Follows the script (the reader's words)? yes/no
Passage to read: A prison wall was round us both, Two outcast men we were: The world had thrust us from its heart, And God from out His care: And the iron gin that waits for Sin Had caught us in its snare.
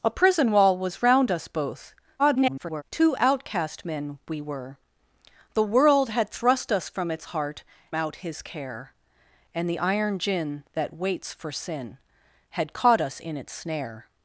no